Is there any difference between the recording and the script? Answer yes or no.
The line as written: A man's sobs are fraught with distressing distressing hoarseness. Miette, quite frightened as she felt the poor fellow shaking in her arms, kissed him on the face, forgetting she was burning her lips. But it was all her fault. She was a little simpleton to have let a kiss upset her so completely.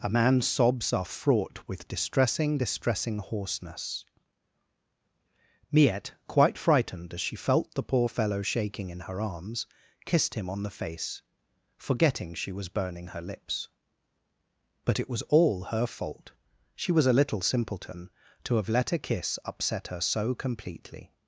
no